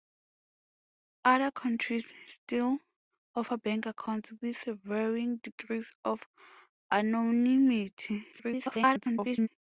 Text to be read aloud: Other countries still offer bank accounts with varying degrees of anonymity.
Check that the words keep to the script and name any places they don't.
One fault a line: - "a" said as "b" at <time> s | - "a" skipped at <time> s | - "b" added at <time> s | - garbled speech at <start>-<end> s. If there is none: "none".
- garbled speech at 8.3-9.5 s